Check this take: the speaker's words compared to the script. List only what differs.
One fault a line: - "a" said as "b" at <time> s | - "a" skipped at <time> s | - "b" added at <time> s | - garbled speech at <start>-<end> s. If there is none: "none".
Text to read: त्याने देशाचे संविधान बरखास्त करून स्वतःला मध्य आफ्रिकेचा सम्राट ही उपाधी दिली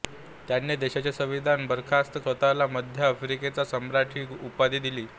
- "करून" skipped at 2.2 s